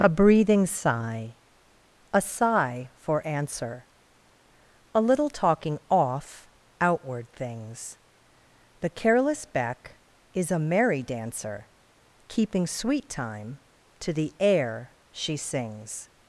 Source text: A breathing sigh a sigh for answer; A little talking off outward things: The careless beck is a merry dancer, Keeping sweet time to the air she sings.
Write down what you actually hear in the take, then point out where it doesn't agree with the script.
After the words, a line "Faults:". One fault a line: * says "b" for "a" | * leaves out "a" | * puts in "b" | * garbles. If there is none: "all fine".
A breathing sigh a sigh for answer; A little talking off outward things: The careless beck is a merry dancer, Keeping sweet time to the air she sings.
Faults:
all fine